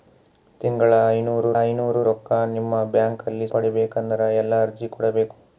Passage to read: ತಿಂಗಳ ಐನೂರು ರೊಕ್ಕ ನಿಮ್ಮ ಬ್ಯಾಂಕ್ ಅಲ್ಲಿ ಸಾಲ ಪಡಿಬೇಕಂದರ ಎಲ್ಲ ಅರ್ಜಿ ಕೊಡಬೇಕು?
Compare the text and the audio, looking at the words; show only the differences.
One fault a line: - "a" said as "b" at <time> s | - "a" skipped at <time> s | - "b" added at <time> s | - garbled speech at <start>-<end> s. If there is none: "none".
- "ಐನೂರು" added at 1.6 s
- "ಸಾಲ" skipped at 3.5 s